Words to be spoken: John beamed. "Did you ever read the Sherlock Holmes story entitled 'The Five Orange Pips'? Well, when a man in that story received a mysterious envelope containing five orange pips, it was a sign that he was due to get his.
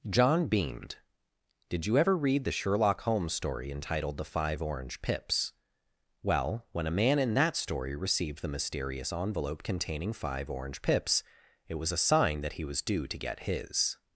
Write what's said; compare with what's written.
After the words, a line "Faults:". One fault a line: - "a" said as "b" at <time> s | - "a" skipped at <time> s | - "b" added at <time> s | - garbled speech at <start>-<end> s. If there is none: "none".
John beamed. "Did you ever read the Sherlock Holmes story entitled 'The Five Orange Pips'? Well, when a man in that story received the mysterious envelope containing five orange pips, it was a sign that he was due to get his.
Faults:
- "a" said as "the" at 8.4 s